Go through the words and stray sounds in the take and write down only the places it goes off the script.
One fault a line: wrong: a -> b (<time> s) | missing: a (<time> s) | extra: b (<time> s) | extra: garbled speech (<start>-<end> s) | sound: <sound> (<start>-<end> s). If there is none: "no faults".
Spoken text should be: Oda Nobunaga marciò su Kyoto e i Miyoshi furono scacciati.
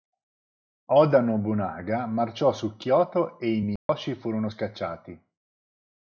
sound: dropout (3.8-3.9 s)